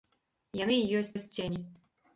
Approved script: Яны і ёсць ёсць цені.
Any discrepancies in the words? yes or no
no